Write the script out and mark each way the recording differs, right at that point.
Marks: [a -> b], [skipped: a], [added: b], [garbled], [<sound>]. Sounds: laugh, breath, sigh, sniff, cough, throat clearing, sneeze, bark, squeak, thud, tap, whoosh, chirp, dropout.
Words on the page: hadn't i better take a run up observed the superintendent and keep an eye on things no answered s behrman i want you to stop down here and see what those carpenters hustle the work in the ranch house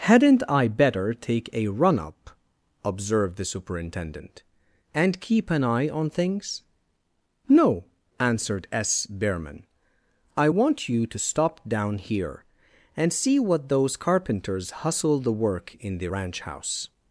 hadn't i better take a run up observed the superintendent and keep an eye on things no answered s behrman i want you to stop down here and see what those carpenters hustle the work in the ranch house